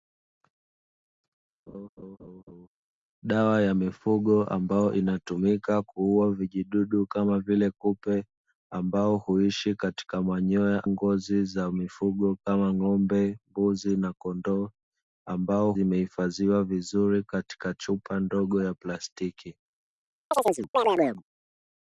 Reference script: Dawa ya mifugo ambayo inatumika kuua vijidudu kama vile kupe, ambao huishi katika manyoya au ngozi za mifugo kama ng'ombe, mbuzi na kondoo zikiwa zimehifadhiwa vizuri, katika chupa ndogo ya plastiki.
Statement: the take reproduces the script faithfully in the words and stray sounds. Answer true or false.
false